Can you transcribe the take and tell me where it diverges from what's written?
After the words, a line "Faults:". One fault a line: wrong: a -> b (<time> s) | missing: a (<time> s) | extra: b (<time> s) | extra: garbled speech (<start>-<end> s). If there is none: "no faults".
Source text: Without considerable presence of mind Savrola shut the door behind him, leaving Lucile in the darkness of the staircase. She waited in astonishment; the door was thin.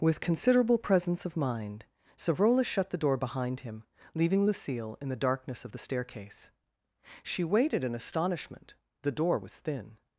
With considerable presence of mind Savrola shut the door behind him, leaving Lucile in the darkness of the staircase. She waited in astonishment; the door was thin.
Faults:
wrong: Without -> With (0.0 s)